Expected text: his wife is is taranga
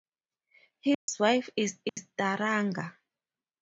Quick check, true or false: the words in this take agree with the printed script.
true